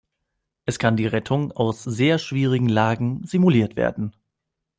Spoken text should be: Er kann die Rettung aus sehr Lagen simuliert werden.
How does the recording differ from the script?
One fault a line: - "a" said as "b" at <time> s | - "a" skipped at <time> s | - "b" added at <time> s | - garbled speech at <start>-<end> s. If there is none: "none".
- "Er" said as "Es" at 0.7 s
- "schwierigen" added at 2.2 s